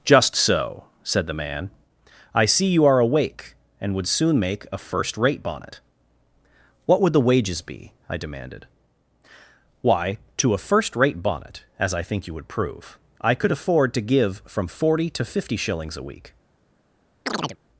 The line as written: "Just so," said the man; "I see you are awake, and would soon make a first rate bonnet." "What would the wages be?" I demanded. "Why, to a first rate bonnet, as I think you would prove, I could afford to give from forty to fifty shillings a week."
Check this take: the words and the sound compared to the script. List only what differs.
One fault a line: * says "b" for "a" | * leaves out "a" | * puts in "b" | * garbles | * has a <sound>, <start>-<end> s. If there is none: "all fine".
* has a chirp, 17.3-17.6 s